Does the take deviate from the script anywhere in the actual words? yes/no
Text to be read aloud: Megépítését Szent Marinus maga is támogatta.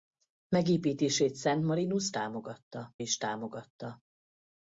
yes